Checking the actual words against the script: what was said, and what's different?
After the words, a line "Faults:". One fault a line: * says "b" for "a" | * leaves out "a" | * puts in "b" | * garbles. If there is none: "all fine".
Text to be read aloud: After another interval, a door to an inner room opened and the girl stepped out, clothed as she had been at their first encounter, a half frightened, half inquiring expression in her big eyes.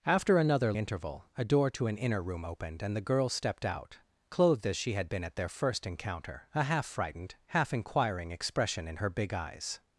After another interval, a door to an inner room opened and the girl stepped out, clothed as she had been at their first encounter, a half frightened, half inquiring expression in her big eyes.
Faults:
all fine